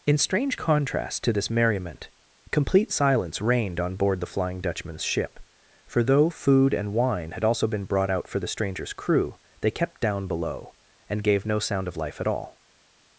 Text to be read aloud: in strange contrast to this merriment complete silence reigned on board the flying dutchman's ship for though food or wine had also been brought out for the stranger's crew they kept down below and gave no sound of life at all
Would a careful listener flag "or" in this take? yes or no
yes